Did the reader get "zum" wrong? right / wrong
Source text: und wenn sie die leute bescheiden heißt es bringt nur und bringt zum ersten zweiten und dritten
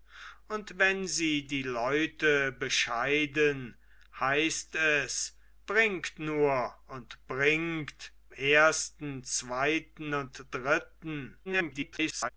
wrong